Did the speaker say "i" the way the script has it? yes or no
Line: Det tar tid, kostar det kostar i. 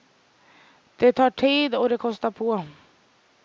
no